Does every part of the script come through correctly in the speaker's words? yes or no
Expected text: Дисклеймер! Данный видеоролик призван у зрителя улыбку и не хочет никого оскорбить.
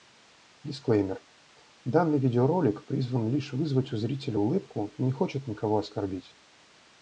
no